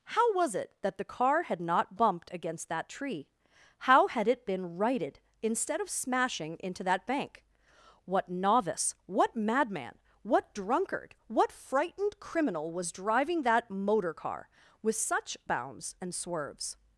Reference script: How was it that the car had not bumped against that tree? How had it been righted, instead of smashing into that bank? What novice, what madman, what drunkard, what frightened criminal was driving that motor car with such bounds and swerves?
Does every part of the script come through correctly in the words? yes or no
yes